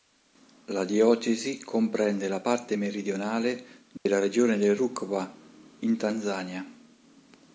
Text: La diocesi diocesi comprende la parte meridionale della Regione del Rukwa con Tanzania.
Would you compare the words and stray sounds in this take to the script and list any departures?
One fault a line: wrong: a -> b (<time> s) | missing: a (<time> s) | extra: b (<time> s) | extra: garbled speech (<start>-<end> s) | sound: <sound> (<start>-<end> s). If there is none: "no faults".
missing: diocesi (1.6 s)
sound: dropout (4.0-4.1 s)
wrong: con -> in (5.8 s)